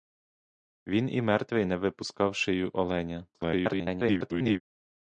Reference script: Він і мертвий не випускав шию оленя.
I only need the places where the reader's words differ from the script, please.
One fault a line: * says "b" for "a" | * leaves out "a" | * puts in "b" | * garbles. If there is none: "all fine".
* garbles